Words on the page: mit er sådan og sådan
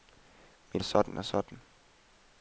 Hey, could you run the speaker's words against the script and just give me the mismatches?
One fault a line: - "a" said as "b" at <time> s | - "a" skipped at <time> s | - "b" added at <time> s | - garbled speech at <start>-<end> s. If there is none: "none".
none